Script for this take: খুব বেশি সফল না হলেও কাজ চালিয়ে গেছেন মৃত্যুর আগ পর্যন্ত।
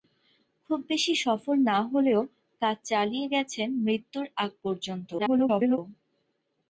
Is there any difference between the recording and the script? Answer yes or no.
yes